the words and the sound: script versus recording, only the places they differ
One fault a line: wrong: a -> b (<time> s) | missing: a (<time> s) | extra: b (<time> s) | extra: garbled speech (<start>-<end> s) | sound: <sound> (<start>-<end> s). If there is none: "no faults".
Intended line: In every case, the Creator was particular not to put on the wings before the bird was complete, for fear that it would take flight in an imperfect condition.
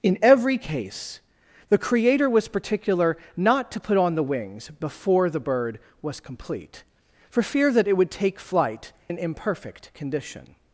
missing: in (8.9 s)